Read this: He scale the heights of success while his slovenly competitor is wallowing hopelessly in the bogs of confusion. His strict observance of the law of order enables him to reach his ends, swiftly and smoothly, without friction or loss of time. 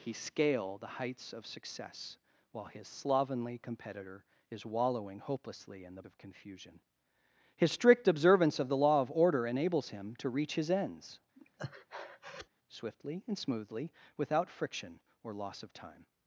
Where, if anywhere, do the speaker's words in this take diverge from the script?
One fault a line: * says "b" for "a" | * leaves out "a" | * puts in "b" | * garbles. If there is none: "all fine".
* leaves out "bogs"